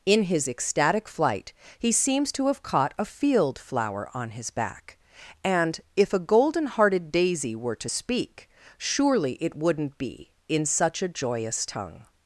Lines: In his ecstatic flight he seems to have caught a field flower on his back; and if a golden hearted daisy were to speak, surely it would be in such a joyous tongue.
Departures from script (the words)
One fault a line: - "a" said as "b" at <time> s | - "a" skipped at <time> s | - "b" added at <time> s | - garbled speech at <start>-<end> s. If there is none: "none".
- "would" said as "wouldn't" at 9.5 s